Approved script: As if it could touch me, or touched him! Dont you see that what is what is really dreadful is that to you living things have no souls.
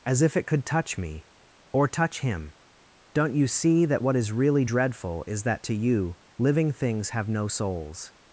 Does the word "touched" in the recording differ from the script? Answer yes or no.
yes